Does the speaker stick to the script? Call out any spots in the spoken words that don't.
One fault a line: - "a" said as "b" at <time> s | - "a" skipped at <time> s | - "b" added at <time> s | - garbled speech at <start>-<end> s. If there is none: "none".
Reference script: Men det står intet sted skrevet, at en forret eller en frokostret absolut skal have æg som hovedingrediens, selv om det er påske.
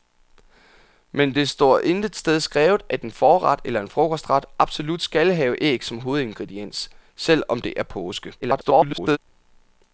- garbled speech at 8.4-9.2 s